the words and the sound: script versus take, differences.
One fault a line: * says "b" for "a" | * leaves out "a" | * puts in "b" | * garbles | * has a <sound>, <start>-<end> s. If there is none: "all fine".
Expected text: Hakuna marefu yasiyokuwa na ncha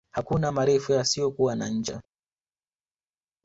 all fine